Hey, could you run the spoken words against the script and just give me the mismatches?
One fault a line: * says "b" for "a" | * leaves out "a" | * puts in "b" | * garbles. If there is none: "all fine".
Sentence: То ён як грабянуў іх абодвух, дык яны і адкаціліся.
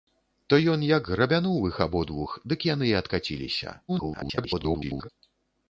* garbles